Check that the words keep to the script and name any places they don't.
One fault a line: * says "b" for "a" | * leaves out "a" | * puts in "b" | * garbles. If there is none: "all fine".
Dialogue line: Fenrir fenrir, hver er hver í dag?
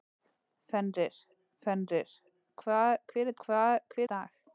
all fine